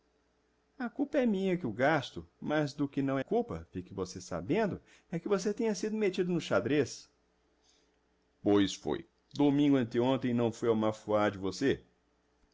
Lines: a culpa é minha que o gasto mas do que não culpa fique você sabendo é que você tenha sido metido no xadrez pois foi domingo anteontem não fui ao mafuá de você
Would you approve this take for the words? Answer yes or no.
yes